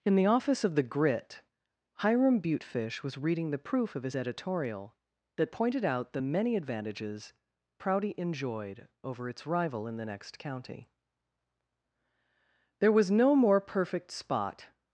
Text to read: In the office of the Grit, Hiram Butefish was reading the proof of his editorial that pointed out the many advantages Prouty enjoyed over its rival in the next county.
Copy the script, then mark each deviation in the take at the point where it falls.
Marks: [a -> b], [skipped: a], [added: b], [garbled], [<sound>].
In the office of the Grit, Hiram Butefish was reading the proof of his editorial that pointed out the many advantages Prouty enjoyed over its rival in the next county. [added: There was no more perfect spot]